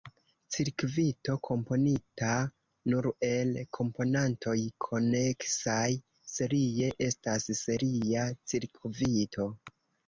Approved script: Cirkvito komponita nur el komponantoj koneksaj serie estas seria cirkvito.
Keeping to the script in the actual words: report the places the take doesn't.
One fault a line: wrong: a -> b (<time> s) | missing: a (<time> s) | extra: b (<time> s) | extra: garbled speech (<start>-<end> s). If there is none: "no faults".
no faults